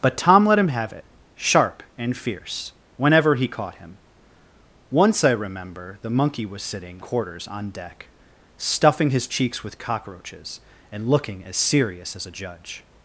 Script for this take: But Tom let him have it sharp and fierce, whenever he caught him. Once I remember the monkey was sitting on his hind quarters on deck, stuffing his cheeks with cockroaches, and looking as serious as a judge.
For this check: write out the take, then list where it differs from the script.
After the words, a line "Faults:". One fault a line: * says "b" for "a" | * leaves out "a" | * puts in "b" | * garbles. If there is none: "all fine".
But Tom let him have it sharp and fierce, whenever he caught him. Once I remember the monkey was sitting quarters on deck, stuffing his cheeks with cockroaches, and looking as serious as a judge.
Faults:
* leaves out "on his hind"